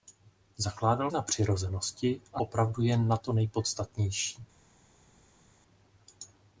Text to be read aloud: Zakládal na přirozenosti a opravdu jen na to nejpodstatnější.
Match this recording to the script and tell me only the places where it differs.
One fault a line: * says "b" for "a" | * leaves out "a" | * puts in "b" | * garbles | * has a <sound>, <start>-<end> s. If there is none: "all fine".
all fine